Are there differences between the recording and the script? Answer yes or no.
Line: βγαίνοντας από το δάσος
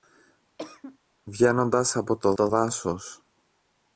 yes